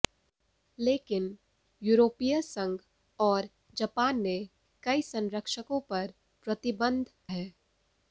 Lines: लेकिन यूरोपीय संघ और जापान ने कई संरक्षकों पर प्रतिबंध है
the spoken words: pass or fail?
pass